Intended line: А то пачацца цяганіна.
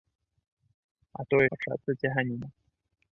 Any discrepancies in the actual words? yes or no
no